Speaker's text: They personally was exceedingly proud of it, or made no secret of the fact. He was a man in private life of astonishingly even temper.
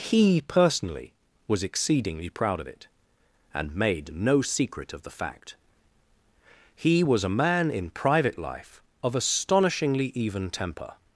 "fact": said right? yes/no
yes